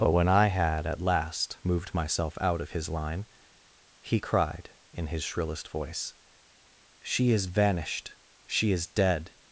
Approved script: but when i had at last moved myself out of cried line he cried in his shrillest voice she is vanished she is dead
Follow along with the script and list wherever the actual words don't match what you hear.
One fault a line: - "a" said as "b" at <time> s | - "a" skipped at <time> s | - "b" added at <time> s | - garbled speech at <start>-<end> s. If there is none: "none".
- "cried" said as "his" at 2.7 s